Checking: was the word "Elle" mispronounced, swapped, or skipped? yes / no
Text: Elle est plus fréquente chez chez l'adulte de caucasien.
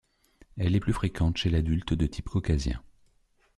no